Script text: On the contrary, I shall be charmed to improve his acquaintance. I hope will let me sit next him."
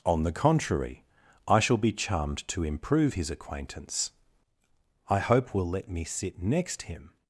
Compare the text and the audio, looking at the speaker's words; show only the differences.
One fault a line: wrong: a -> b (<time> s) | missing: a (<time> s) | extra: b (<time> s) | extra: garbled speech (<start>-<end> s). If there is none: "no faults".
no faults